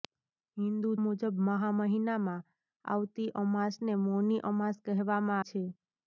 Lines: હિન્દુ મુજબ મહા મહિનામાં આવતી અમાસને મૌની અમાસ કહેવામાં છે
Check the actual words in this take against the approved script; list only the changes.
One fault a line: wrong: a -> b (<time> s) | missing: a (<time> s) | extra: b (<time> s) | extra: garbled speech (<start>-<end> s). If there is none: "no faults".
no faults